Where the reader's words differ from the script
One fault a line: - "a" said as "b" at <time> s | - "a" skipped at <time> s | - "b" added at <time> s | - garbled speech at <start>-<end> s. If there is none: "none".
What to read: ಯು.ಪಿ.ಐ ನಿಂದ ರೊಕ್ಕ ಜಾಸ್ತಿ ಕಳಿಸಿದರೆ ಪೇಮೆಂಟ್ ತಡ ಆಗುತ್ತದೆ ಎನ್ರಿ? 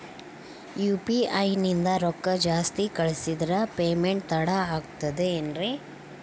none